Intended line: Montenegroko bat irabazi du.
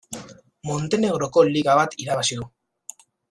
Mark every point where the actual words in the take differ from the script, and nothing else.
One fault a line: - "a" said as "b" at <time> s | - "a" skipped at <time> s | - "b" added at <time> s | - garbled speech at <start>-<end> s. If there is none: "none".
- "liga" added at 1.5 s